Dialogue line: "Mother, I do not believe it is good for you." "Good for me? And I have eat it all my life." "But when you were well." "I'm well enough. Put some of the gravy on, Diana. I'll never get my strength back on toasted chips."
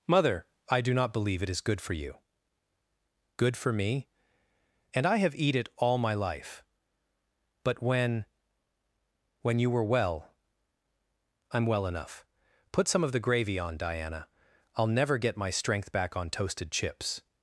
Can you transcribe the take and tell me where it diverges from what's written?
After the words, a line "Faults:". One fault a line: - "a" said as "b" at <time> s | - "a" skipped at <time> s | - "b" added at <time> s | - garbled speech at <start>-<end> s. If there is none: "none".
"Mother, I do not believe it is good for you." "Good for me? And I have eat it all my life." "But when when you were well." "I'm well enough. Put some of the gravy on, Diana. I'll never get my strength back on toasted chips."
Faults:
- "when" added at 9.4 s